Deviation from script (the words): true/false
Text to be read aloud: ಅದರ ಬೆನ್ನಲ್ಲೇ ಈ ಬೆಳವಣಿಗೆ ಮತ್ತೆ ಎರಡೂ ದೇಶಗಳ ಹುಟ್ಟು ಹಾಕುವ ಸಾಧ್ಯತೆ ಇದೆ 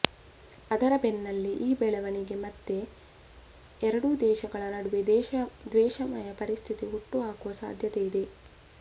true